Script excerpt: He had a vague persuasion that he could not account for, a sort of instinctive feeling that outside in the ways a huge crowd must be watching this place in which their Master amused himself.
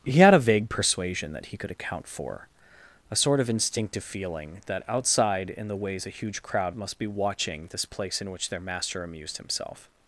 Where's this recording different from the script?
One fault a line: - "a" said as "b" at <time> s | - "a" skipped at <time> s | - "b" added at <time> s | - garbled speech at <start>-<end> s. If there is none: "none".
- "not" skipped at 1.7 s